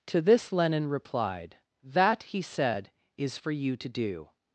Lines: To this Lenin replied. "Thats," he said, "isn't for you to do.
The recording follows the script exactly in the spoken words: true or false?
false